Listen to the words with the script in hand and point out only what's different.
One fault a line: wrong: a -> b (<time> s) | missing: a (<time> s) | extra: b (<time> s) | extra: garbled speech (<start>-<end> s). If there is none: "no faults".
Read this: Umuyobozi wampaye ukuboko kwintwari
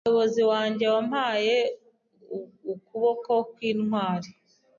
extra: wanjye (0.5 s)